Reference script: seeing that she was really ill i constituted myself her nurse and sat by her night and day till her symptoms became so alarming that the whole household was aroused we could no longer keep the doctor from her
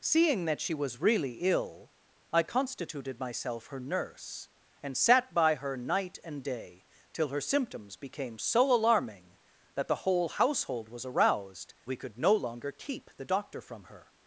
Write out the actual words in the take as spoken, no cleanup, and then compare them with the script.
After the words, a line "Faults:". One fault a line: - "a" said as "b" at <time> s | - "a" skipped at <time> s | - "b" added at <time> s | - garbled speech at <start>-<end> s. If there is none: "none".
seeing that she was really ill i constituted myself her nurse and sat by her night and day till her symptoms became so alarming that the whole household was aroused we could no longer keep the doctor from her
Faults:
none